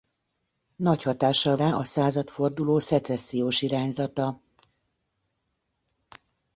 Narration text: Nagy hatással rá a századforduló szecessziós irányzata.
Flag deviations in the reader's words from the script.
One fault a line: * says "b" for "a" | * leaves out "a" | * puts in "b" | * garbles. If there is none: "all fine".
all fine